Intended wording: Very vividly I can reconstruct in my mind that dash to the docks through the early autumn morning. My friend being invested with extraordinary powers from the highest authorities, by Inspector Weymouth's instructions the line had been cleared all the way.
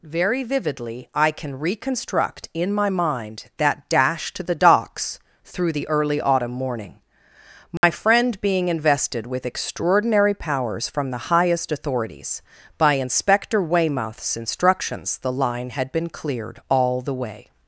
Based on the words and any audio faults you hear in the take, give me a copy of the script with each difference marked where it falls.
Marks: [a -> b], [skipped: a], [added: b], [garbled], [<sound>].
Very vividly I can reconstruct in my mind that dash to the docks through the early autumn morning. My [dropout] friend being invested with extraordinary powers from the highest authorities, by Inspector Weymouth's instructions the line had been cleared all the way.